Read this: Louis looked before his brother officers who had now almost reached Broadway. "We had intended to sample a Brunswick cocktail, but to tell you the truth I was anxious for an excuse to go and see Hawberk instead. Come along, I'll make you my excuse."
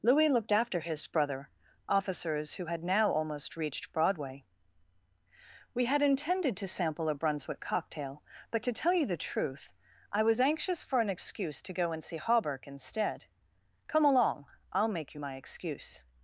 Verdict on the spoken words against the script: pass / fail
fail